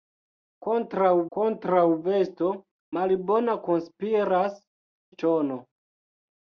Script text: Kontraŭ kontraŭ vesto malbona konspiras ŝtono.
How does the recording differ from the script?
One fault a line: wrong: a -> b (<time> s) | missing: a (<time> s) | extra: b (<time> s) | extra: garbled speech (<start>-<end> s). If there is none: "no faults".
no faults